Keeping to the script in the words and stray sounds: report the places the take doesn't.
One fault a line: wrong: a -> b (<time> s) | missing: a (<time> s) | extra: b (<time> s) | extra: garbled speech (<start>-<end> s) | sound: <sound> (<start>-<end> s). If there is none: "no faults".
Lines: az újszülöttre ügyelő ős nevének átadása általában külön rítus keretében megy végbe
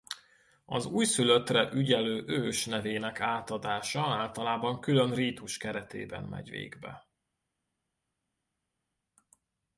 no faults